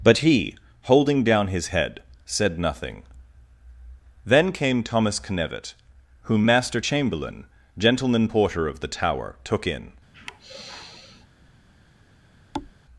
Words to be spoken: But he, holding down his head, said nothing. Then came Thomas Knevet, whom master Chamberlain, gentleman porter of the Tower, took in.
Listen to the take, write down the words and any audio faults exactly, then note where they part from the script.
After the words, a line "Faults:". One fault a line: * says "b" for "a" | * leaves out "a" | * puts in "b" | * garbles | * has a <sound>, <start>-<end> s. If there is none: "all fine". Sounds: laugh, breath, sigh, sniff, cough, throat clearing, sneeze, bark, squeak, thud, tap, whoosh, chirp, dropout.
But he, holding down his head, said nothing. Then came Thomas Knevet, whom master Chamberlain, gentleman porter of the Tower, took in.
Faults:
* has a sigh, 10.1-11.3 s
* has a thud, 12.5-12.7 s